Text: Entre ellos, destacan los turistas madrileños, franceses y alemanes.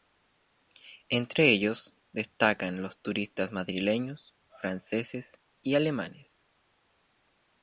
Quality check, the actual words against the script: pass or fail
pass